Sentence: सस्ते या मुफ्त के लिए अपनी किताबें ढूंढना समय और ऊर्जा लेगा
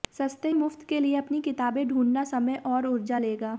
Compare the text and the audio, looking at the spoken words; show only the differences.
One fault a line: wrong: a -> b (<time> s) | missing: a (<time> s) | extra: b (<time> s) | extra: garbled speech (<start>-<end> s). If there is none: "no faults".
missing: या (0.5 s)